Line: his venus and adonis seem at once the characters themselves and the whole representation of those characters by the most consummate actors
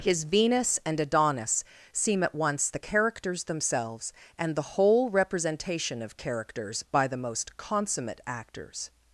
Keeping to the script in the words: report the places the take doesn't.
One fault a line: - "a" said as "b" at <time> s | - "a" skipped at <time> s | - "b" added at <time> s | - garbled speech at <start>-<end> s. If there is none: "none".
- "those" skipped at 6.2 s